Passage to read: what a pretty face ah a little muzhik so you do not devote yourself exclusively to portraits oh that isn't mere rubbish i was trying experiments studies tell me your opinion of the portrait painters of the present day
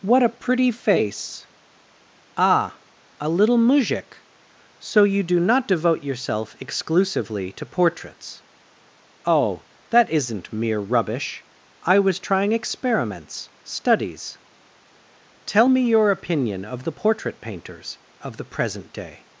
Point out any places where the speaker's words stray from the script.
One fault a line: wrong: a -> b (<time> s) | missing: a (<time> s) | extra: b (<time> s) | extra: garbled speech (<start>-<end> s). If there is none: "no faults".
no faults